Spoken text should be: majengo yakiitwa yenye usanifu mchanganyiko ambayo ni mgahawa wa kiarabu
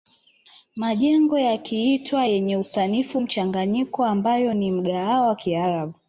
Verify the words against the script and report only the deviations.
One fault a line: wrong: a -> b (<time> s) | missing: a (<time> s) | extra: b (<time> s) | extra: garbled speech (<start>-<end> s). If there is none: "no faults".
no faults